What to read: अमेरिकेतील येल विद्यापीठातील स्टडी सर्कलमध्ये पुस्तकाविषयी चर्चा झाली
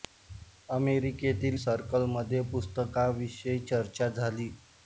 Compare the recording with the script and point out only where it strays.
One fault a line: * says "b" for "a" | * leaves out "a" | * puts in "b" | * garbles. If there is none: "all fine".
* leaves out "येल विद्यापीठातील स्टडी"